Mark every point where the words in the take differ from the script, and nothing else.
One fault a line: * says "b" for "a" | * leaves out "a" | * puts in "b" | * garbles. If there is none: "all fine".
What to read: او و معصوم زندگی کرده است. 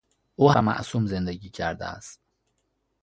all fine